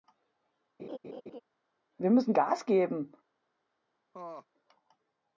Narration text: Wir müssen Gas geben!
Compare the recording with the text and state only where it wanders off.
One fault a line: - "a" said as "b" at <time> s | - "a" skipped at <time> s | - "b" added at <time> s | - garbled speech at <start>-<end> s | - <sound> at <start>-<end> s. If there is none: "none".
- laugh at 0.8-1.4 s
- laugh at 4.1-4.5 s